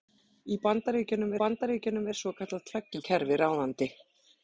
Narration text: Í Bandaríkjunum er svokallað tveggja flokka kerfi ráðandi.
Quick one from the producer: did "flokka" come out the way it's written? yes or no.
no